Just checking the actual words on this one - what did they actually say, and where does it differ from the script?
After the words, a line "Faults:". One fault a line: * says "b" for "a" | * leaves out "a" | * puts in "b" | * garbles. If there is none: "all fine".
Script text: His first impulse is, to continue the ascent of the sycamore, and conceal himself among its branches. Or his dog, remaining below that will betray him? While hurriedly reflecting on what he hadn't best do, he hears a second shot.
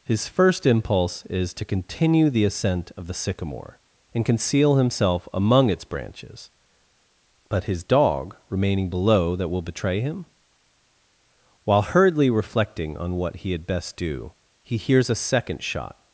His first impulse is, to continue the ascent of the sycamore, and conceal himself among its branches. But his dog, remaining below that will betray him? While hurriedly reflecting on what he had best do, he hears a second shot.
Faults:
* says "But" for "Or"
* says "had" for "hadn't"